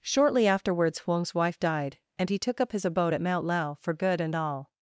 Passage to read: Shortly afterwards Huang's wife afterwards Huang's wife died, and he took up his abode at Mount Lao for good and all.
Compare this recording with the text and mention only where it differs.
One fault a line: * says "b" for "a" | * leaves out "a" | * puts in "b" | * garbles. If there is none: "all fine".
* leaves out "afterwards Huang's wife"